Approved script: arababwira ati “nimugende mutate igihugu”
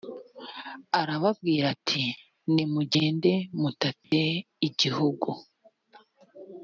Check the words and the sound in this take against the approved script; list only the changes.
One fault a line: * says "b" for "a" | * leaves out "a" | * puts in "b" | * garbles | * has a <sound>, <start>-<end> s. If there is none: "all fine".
* has a dropout, 4.0-4.1 s